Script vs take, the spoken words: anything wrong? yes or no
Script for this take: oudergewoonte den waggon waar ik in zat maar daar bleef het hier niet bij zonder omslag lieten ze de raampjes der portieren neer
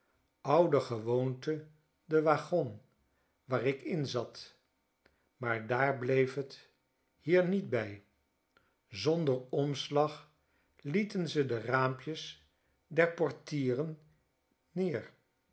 no